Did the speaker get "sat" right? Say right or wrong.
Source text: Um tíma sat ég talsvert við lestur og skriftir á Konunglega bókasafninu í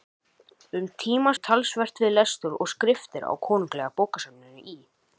wrong